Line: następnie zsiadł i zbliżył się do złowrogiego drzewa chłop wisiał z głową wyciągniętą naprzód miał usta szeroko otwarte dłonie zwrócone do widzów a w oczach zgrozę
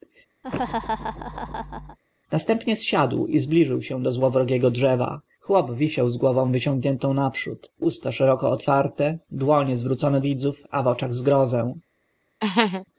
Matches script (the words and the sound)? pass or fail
fail